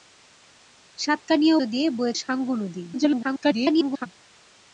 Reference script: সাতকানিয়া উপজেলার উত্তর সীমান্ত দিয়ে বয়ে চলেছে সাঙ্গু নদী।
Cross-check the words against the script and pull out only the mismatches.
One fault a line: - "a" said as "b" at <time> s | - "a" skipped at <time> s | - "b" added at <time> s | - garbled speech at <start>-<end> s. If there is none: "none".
- "উপজেলার উত্তর সীমান্ত" skipped at 1.6 s
- "চলেছে" skipped at 2.1 s
- garbled speech at 2.9-4.1 s